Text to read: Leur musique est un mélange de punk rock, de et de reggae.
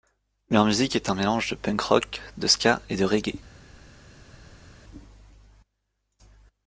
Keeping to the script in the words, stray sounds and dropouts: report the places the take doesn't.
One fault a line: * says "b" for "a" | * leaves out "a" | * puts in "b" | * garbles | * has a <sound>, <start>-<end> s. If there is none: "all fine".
* puts in "ska"